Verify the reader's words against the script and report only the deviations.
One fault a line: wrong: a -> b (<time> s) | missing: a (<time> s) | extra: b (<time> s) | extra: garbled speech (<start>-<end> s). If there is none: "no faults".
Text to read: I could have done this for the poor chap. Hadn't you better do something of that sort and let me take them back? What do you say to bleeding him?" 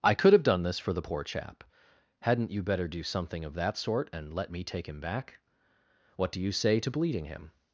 wrong: them -> him (4.9 s)